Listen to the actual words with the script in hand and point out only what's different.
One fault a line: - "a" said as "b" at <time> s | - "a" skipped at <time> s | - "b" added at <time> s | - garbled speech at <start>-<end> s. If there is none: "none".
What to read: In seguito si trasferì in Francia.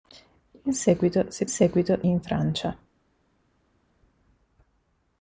- "trasferì" said as "seguito" at 1.5 s